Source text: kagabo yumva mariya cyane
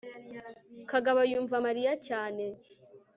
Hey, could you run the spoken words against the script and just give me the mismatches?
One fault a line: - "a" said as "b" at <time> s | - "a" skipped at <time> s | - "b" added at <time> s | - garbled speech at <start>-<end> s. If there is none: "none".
none